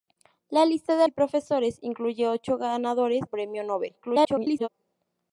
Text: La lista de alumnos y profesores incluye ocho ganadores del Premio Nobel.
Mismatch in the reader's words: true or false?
true